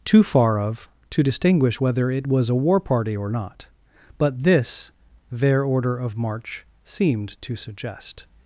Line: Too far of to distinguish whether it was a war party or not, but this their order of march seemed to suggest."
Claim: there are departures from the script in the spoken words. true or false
false